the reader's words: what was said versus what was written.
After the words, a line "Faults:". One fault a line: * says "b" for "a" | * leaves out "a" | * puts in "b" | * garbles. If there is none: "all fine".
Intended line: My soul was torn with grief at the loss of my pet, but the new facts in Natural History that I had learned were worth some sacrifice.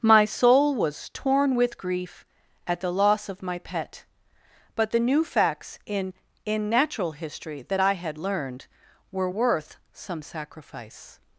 My soul was torn with grief at the loss of my pet, but the new facts in in Natural History that I had learned were worth some sacrifice.
Faults:
* puts in "in"